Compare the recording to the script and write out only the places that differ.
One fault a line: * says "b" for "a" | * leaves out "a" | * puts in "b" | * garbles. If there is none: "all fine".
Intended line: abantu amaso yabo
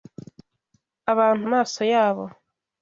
all fine